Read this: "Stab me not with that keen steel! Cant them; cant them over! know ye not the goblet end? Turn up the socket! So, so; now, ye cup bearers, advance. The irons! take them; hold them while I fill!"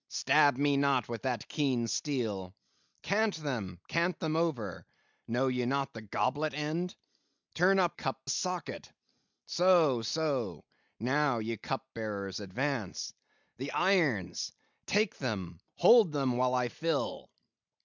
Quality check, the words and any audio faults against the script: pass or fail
fail